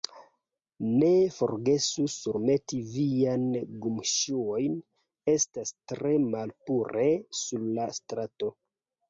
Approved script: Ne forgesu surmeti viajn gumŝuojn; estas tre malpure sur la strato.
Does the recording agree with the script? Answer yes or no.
yes